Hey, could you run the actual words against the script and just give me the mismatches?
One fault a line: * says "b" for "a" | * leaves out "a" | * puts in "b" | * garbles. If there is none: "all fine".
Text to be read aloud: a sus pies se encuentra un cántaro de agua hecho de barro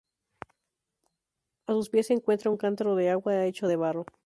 all fine